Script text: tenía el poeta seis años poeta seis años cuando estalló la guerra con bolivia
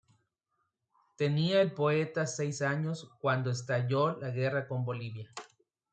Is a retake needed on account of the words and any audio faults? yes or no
yes